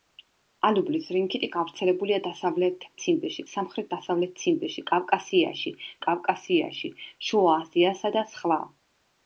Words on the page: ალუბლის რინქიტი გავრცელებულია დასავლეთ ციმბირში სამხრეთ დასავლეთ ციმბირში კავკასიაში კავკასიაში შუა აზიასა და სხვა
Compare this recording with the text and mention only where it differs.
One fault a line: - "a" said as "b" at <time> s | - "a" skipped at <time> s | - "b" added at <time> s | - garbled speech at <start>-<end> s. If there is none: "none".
none